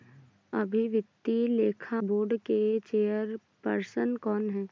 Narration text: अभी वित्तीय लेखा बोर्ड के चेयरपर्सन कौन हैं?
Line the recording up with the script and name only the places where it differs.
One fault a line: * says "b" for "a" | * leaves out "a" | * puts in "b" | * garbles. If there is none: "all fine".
all fine